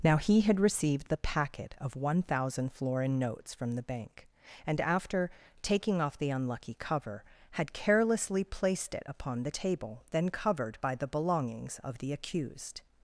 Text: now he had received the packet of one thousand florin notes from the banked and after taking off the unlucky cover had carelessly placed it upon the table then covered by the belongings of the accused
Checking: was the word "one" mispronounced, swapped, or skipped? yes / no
no